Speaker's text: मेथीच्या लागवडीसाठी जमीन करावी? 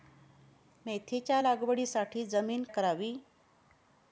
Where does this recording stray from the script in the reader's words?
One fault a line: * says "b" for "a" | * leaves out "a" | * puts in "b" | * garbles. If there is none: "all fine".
all fine